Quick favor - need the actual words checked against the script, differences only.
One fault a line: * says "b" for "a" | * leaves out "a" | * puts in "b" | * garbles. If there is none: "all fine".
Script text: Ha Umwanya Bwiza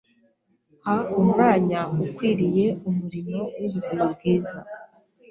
* puts in "Ukwiriye Umurimo w'Ubuzima"